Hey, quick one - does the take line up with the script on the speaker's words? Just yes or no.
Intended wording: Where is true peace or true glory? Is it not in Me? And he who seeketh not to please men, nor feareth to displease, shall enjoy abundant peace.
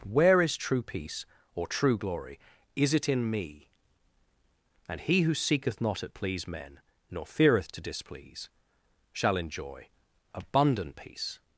no